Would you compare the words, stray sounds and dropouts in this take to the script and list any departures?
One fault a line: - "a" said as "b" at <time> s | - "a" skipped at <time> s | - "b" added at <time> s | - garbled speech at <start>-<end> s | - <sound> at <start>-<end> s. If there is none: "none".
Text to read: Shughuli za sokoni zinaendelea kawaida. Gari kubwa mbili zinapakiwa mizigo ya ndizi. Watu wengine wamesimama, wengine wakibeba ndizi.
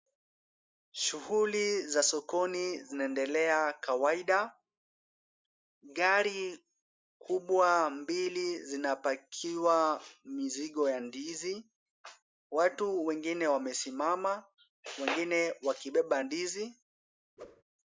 - whoosh at 17.4-17.6 s